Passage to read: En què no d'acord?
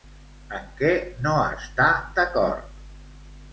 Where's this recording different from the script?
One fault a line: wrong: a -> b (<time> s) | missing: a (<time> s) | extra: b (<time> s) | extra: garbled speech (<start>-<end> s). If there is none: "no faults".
extra: està (1.6 s)